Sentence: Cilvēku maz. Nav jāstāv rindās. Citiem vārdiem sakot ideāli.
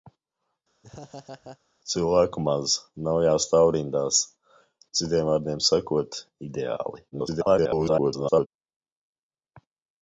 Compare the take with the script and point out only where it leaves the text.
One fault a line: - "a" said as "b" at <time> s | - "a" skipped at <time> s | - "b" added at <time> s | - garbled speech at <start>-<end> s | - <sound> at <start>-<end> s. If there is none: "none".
- laugh at 0.8-1.6 s
- garbled speech at 7.1-8.5 s